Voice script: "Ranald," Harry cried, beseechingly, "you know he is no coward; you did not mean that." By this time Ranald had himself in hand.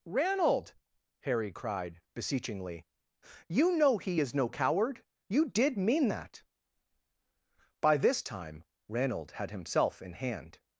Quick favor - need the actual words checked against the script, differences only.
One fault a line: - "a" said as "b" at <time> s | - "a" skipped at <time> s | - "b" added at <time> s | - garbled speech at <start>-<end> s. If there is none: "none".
- "not" skipped at 5.8 s